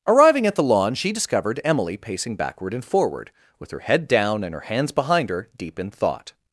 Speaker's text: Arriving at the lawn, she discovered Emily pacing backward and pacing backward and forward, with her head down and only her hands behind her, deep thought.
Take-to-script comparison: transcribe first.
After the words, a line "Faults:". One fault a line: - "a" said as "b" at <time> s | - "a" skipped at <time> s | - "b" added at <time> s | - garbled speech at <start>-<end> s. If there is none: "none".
Arriving at the lawn, she discovered Emily pacing backward and forward, with her head down and her hands behind her, deep in thought.
Faults:
- "pacing backward and" skipped at 2.8 s
- "only" skipped at 4.5 s
- "in" added at 5.8 s